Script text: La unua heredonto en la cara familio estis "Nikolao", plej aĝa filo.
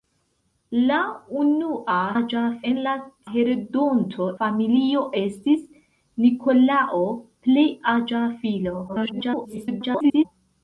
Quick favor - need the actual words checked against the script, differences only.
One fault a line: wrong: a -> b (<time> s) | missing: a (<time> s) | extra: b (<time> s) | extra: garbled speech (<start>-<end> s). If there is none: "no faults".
wrong: heredonto -> aĝa (2.2 s)
wrong: cara -> heredonto (3.3 s)
extra: garbled speech (8.9-10.3 s)